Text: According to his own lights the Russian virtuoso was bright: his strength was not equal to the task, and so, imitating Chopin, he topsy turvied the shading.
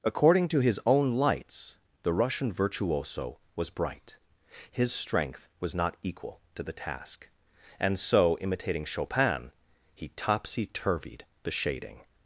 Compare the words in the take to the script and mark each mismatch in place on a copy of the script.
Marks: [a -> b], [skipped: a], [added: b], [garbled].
According to his own lights the Russian virtuoso was bright: his strength was not equal to the task, and so, imitating Chopin, he topsy turvied the shading.